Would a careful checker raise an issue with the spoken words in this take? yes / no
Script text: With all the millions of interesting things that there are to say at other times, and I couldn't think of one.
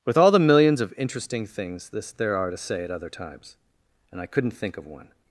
yes